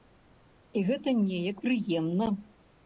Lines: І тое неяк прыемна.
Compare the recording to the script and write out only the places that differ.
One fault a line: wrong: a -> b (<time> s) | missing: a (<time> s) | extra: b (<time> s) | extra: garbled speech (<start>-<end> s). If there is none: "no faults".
wrong: тое -> гэта (0.9 s)